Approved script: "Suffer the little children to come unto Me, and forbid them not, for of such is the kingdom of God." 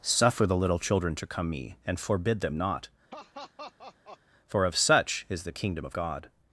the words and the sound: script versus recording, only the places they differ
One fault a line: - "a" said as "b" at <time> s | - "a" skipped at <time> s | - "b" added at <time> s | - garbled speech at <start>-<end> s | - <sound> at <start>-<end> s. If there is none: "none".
- "unto" skipped at 1.5 s
- laugh at 3.1-4.2 s